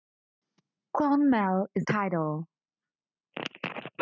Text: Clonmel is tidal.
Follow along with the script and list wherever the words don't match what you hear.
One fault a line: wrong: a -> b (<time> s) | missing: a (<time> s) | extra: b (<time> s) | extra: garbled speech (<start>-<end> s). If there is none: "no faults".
no faults